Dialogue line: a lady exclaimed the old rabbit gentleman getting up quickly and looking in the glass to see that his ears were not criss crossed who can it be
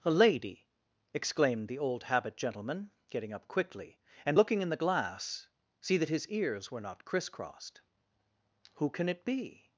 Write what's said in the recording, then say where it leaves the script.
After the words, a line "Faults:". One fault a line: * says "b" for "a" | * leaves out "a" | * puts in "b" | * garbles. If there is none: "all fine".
a lady exclaimed the old habit gentleman getting up quickly and looking in the glass see that his ears were not criss crossed who can it be
Faults:
* says "habit" for "rabbit"
* leaves out "to"